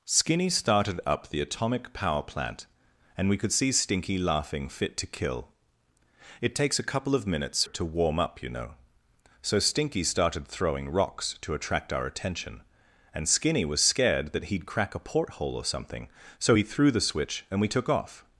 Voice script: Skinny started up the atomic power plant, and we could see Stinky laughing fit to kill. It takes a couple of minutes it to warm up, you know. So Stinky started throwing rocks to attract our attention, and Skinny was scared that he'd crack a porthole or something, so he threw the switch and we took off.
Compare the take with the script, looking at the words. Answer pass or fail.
pass